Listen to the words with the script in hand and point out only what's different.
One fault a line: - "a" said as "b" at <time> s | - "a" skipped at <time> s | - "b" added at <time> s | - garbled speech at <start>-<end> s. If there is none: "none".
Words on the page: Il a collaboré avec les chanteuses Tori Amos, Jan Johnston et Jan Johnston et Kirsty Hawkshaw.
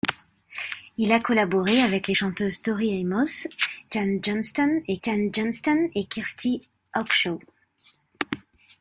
none